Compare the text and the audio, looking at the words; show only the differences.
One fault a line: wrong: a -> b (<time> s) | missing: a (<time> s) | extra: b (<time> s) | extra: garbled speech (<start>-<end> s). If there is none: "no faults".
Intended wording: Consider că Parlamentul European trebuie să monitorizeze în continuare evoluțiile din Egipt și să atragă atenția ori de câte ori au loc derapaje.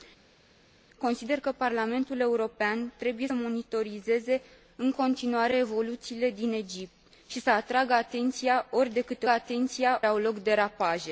missing: să (3.3 s)
wrong: ori -> atenția (9.3 s)